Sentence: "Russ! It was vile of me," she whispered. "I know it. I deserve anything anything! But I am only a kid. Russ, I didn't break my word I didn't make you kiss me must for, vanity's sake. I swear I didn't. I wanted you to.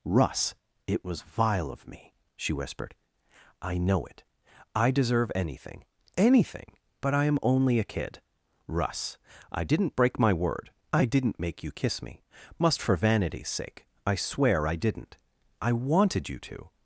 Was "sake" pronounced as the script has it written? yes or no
yes